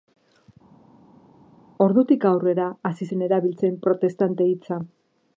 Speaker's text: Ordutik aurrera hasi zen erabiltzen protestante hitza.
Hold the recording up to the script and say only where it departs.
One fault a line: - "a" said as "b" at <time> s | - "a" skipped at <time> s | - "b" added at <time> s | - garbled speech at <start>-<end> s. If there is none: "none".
none